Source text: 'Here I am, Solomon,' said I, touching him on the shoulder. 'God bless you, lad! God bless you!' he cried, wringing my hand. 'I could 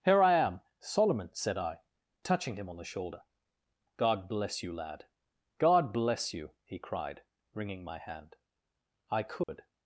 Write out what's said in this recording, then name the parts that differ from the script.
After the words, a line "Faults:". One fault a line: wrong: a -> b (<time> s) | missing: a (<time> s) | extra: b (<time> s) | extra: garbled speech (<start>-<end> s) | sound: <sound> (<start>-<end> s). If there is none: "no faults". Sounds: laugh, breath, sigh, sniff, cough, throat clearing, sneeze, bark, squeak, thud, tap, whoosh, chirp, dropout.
'Here I am, Solomon,' said I, touching him on the shoulder. 'God bless you, lad! God bless you!' he cried, wringing my hand. 'I could
Faults:
sound: dropout (9.4-9.5 s)